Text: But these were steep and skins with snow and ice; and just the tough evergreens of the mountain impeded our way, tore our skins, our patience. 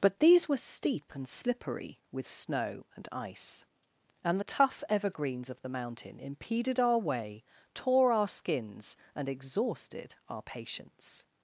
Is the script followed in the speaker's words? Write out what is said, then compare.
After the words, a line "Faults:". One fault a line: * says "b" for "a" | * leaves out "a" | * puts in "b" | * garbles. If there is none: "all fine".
But these were steep and slippery with snow and ice; and the tough evergreens of the mountain impeded our way, tore our skins, and exhausted our patience.
Faults:
* says "slippery" for "skins"
* leaves out "just"
* puts in "and exhausted"